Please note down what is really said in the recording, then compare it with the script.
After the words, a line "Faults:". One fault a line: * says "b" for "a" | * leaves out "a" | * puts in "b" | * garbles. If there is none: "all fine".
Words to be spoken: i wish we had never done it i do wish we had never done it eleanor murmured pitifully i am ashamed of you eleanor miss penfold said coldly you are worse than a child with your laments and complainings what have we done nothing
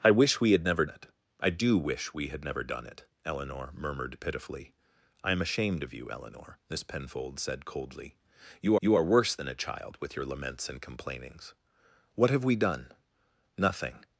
i wish we had never it i do wish we had never done it eleanor murmured pitifully i am ashamed of you eleanor miss penfold said coldly you you are worse than a child with your laments and complainings what have we done nothing
Faults:
* leaves out "done"
* puts in "you"